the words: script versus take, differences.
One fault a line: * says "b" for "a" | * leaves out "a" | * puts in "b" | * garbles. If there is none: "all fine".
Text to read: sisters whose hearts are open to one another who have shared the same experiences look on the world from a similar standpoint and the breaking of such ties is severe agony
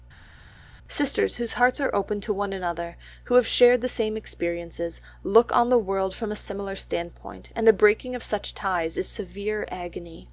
all fine